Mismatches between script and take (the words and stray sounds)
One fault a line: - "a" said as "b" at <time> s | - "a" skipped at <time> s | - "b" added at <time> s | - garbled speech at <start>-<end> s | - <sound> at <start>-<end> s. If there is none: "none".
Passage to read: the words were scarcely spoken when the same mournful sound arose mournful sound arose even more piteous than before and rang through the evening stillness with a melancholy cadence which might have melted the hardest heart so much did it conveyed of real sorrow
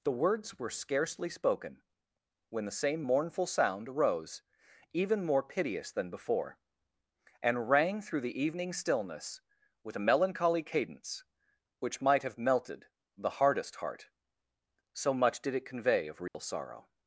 - "mournful sound arose" skipped at 4.4 s
- "conveyed" said as "convey" at 15.7 s
- dropout at 16.3-16.3 s